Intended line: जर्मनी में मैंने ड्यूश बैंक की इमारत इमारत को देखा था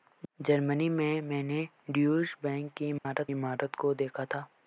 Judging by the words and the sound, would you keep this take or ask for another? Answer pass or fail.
fail